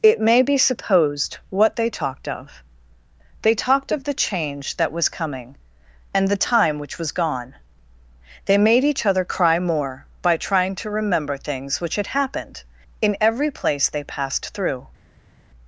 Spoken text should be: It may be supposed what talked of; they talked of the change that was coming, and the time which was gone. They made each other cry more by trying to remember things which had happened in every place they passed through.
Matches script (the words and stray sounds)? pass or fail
fail